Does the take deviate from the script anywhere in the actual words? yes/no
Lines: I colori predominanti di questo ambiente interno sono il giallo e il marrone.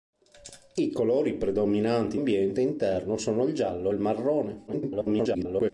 yes